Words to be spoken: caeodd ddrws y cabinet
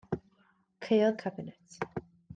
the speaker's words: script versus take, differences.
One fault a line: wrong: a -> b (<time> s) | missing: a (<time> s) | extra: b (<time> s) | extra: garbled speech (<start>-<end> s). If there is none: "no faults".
missing: ddrws (1.2 s)